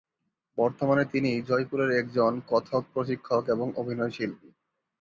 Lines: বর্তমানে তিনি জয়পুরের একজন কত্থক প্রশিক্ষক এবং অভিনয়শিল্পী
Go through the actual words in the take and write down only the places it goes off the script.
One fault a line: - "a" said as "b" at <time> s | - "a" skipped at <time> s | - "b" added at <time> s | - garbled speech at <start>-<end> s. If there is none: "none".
none